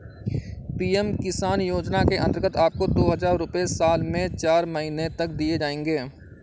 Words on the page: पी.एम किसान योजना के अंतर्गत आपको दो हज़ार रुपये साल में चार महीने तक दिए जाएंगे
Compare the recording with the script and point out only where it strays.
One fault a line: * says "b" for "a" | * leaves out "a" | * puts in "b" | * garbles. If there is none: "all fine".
all fine